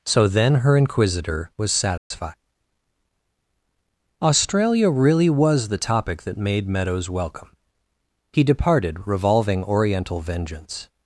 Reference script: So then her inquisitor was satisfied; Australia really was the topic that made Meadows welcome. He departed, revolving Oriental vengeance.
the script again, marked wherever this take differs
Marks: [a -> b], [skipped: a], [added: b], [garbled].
So then her inquisitor was satisfied; Australia really was the topic that made Meadows welcome. He departed, revolving Oriental vengeance.